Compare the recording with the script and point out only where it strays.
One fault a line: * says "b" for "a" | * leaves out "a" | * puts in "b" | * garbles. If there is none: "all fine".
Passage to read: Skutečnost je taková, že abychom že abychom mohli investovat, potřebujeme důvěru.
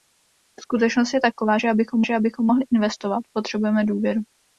all fine